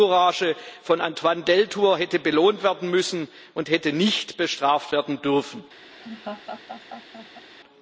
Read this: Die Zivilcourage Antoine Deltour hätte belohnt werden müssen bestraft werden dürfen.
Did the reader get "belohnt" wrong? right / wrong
right